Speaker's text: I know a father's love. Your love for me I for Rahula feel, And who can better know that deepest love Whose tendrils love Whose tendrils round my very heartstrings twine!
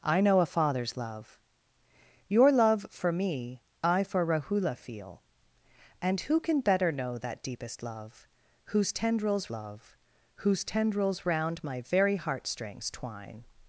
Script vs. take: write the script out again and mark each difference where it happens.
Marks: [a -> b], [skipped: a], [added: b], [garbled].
I know a father's love. Your love for me I for Rahula feel, And who can better know that deepest love Whose tendrils love Whose tendrils round my very heartstrings twine!